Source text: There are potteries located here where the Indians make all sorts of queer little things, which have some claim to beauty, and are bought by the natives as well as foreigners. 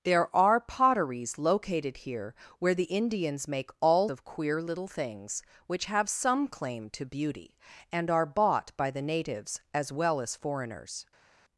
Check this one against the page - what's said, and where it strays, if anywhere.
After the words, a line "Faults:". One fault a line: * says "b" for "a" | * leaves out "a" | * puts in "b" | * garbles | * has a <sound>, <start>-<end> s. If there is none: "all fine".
There are potteries located here where the Indians make all of queer little things, which have some claim to beauty, and are bought by the natives as well as foreigners.
Faults:
* leaves out "sorts"